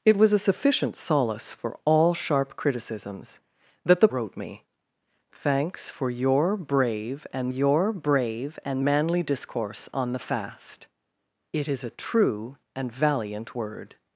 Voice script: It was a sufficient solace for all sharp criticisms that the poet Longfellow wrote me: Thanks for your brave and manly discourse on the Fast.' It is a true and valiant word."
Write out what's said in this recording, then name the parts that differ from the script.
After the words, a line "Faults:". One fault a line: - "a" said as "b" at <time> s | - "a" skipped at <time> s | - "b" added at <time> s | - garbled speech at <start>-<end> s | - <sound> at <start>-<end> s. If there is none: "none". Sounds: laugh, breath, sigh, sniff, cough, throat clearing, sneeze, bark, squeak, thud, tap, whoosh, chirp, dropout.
It was a sufficient solace for all sharp criticisms that the wrote me: Thanks for your brave and your brave and manly discourse on the Fast.' It is a true and valiant word."
Faults:
- "poet Longfellow" skipped at 4.1 s
- "your brave and" added at 7.5 s